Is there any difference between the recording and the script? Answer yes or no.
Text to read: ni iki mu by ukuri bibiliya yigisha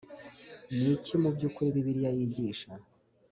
no